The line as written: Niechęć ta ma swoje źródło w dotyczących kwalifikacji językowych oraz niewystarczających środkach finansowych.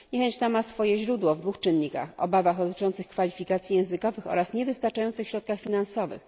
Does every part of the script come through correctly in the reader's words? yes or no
no